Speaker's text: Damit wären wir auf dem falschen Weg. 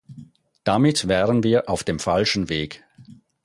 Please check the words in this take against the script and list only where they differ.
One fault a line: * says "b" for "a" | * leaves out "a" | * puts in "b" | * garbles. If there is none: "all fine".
all fine